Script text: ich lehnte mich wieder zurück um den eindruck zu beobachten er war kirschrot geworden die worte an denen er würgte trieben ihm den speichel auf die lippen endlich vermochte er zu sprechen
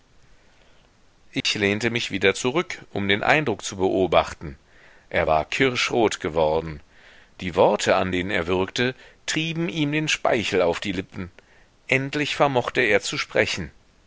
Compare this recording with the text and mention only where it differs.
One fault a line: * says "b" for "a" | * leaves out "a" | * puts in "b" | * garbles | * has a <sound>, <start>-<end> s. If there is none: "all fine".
* has a dropout, 1.4-1.4 s